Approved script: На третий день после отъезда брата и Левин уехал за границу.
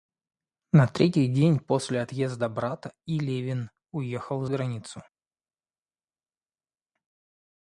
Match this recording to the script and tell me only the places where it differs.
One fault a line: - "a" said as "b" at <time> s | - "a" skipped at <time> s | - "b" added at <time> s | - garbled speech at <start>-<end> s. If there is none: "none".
- "за" skipped at 4.5 s